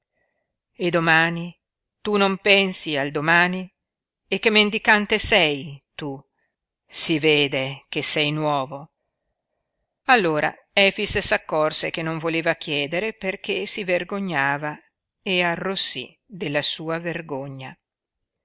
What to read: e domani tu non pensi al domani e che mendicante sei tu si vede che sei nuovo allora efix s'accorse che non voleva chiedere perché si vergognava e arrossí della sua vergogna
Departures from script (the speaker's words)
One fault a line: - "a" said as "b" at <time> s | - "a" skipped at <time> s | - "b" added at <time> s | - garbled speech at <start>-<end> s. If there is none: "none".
none